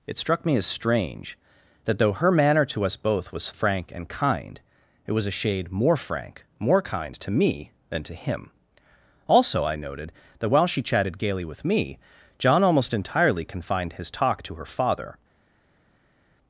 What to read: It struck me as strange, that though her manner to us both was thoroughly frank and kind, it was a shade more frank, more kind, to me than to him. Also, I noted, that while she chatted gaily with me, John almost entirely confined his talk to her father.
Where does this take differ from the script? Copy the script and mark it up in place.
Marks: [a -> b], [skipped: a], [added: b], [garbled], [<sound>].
It struck me as strange, that though her manner to us both was [skipped: thoroughly] frank and kind, it was a shade more frank, more kind, to me than to him. Also, I noted, that while she chatted gaily with me, John almost entirely confined his talk to her father.